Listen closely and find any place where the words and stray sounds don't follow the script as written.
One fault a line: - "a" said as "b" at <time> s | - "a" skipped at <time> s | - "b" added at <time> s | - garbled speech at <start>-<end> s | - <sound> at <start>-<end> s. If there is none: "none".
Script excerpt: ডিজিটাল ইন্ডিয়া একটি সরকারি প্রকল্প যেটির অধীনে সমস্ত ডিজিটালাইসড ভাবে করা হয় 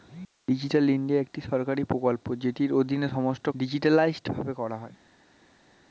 none